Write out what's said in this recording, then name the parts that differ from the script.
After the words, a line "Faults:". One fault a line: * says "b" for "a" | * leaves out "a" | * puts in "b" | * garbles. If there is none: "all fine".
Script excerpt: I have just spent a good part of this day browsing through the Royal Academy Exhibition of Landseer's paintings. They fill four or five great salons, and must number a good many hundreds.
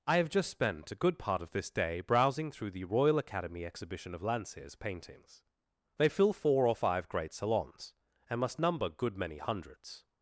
I have just spent a good part of this day browsing through the Royal Academy Exhibition of Landseer's paintings. They fill four or five great salons, and must number good many hundreds.
Faults:
* leaves out "a"